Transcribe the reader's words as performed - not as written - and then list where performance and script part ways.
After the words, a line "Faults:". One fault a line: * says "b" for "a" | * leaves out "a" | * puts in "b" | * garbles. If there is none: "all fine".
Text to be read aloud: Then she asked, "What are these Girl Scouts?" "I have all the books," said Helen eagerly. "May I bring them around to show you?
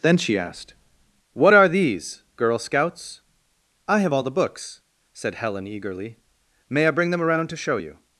Then she asked, "What are these Girl Scouts?" "I have all the books," said Helen eagerly. "May I bring them around to show you?
Faults:
all fine